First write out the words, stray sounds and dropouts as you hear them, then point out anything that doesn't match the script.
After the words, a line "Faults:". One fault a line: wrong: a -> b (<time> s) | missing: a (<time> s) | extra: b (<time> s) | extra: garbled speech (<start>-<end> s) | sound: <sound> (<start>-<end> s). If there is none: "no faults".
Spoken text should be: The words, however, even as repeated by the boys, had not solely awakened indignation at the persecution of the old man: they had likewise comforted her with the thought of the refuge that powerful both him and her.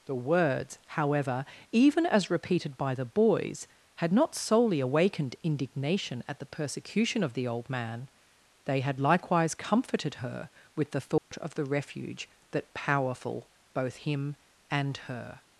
The words, however, even as repeated by the boys, had not solely awakened indignation at the persecution of the old man: they had likewise comforted her with the thought of the refuge that powerful both him and her.
Faults:
sound: dropout (11.2-11.3 s)